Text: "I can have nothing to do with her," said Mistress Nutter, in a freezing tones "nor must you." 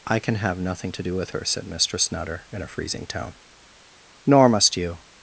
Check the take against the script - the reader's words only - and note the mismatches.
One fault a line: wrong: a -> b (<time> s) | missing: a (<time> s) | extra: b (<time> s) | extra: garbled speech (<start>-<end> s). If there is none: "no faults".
wrong: tones -> tone (3.1 s)